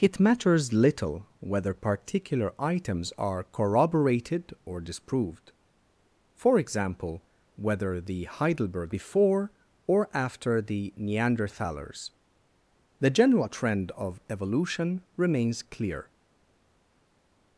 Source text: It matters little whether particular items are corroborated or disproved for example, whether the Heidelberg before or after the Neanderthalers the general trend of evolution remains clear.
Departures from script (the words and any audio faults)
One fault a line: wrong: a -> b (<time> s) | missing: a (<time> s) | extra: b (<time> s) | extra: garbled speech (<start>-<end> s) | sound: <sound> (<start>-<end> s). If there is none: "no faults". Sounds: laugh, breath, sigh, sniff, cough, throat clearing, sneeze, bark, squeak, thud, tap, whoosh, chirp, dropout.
no faults